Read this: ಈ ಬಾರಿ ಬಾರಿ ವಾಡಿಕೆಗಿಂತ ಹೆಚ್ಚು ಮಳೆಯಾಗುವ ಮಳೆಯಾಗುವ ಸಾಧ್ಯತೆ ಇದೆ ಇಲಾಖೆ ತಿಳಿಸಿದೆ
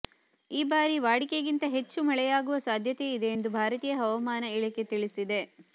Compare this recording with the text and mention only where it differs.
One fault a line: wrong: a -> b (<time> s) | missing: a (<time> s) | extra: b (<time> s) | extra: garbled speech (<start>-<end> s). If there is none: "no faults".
missing: ಬಾರಿ (0.9 s)
missing: ಮಳೆಯಾಗುವ (2.6 s)
extra: ಎಂದು ಭಾರತೀಯ ಹವಾಮಾನ (3.3 s)